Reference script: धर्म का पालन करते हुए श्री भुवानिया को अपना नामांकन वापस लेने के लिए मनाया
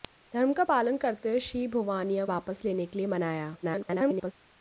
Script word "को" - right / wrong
wrong